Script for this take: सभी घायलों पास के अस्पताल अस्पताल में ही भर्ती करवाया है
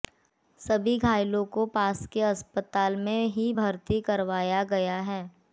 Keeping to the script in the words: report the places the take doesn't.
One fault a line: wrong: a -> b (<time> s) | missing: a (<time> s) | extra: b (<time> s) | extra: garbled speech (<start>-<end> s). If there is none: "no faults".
extra: को (1.5 s)
missing: अस्पताल (3.0 s)
extra: गया (4.6 s)